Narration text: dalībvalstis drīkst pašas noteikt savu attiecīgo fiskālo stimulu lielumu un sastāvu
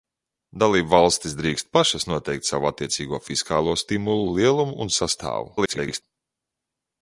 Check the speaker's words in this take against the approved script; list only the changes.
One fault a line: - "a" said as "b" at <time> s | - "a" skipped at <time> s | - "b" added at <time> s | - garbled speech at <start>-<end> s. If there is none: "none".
- garbled speech at 5.6-6.0 s